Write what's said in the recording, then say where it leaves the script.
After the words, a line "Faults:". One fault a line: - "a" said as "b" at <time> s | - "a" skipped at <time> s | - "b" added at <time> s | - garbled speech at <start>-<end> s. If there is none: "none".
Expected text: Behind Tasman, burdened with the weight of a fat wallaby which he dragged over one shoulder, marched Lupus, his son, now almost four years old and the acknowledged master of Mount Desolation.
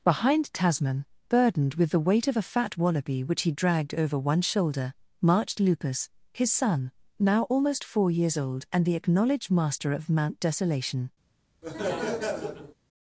Behind Tasman, burdened with the weight of a fat wallaby which he dragged over one shoulder, marched Lupus, his son, now almost four years old and the acknowledged master of Mount Desolation.
Faults:
none